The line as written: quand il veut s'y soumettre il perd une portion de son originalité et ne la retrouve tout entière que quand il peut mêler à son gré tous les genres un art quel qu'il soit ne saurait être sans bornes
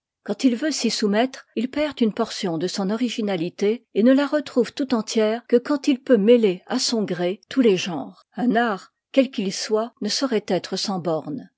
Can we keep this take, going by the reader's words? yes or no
yes